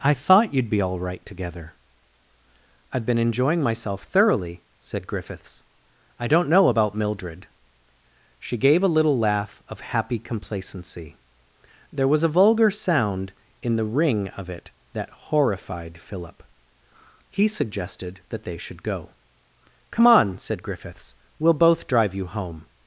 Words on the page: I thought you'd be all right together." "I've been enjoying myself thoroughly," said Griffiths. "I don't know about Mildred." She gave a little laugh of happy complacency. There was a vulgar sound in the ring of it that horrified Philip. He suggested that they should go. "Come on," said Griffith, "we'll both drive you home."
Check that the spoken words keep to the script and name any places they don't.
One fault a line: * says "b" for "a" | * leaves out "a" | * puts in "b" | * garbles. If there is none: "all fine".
* says "Griffiths" for "Griffith"